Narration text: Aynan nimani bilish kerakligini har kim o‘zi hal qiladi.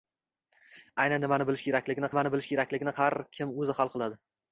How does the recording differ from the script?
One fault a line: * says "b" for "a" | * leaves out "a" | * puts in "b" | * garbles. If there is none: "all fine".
* puts in "nimani bilish kerakligini"